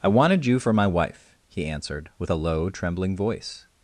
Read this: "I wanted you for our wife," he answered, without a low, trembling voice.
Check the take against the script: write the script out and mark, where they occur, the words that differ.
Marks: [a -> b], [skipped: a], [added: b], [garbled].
"I wanted you for [our -> my] wife," he answered, [without -> with] a low, trembling voice.